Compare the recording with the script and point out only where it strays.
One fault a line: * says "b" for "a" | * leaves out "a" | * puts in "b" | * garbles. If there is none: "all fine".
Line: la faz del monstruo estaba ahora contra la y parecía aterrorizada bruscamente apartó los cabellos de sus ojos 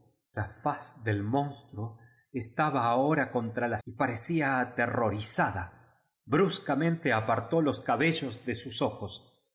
all fine